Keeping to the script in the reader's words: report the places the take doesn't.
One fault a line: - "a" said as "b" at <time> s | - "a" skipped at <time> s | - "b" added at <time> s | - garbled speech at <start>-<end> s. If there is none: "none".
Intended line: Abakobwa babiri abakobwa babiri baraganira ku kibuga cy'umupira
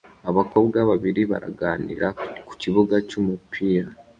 - "abakobwa babiri" skipped at 1.2 s